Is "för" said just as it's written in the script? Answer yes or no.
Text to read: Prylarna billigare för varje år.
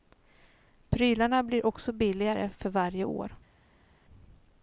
yes